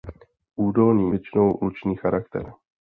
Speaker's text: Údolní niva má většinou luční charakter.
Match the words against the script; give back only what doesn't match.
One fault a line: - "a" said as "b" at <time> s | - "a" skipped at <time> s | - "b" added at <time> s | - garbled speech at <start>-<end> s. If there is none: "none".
- "niva má" skipped at 1.1 s